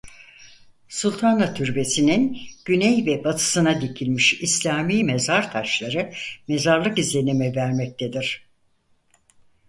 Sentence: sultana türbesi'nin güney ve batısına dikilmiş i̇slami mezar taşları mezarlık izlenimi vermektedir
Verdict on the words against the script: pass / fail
pass